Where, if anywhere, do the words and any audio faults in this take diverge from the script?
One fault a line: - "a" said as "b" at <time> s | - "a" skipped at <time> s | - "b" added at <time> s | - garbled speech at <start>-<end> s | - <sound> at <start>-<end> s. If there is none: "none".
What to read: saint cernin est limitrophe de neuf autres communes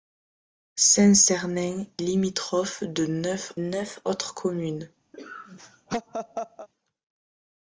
- "est" skipped at 1.9 s
- "neuf" added at 3.6 s
- laugh at 5.1-6.7 s